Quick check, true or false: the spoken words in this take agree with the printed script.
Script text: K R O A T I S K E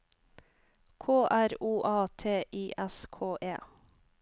true